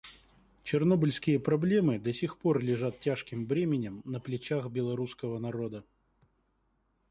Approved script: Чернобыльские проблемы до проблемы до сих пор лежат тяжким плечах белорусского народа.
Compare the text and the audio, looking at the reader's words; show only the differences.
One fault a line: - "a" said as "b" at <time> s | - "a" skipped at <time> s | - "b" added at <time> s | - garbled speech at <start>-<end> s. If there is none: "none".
- "проблемы до" skipped at 2.1 s
- "бременем на" added at 3.5 s